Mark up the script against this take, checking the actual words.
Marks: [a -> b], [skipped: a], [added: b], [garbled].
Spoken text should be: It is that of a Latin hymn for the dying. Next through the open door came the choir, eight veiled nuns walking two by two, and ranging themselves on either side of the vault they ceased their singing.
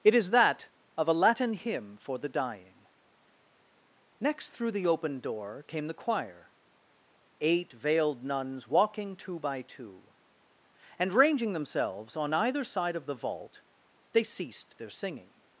It is that of a Latin hymn for the dying. Next through the open door came the choir, eight veiled nuns walking two by two, and ranging themselves on either side of the vault they ceased their singing.